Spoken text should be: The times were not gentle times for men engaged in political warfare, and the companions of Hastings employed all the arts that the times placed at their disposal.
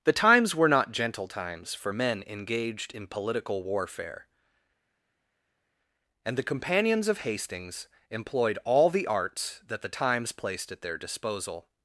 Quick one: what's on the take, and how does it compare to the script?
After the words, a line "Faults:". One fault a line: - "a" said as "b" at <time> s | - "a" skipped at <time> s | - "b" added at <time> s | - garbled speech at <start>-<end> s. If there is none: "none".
The times were not gentle times for men engaged in political warfare, and the companions of Hastings employed all the arts that the times placed at their disposal.
Faults:
none